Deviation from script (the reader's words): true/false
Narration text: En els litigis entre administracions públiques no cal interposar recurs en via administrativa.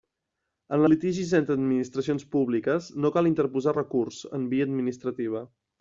true